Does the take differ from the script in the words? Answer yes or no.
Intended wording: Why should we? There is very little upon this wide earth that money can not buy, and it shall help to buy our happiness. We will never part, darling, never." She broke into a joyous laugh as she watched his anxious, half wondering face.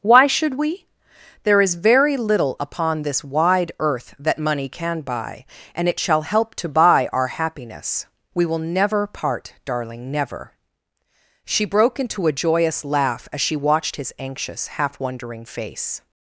yes